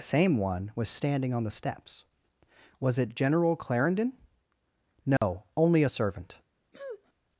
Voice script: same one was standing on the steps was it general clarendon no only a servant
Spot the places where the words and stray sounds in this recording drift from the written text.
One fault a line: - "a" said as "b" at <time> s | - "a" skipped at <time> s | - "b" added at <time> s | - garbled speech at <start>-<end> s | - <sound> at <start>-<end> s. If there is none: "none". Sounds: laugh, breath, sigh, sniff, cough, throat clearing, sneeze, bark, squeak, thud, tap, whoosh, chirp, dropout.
- dropout at 5.2-5.2 s
- sniff at 6.7-7.1 s